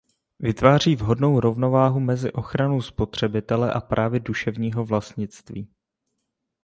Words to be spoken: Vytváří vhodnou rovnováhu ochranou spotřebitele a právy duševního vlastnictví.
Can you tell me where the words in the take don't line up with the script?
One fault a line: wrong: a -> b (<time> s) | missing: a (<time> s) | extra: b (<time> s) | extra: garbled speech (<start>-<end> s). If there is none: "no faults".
extra: mezi (2.0 s)